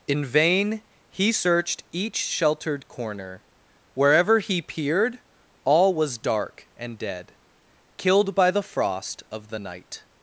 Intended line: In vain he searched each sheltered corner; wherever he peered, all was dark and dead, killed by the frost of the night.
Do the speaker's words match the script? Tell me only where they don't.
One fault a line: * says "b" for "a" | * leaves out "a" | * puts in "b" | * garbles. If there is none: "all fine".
all fine